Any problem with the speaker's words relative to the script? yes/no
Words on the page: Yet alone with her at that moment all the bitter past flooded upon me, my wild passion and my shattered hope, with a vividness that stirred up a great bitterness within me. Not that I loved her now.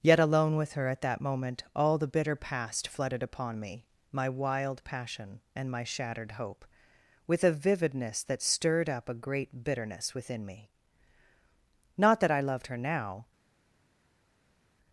no